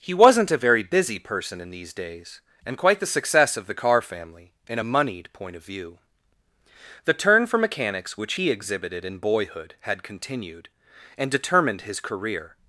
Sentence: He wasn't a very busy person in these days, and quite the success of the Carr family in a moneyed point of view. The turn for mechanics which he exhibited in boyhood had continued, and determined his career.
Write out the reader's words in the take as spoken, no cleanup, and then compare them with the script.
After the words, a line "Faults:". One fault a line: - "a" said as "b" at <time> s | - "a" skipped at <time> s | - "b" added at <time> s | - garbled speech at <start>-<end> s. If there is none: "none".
He wasn't a very busy person in these days, and quite the success of the Carr family in a moneyed point of view. The turn for mechanics which he exhibited in boyhood had continued, and determined his career.
Faults:
none